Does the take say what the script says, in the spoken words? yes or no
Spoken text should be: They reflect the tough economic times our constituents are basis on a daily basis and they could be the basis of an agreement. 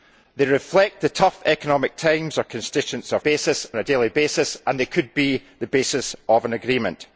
yes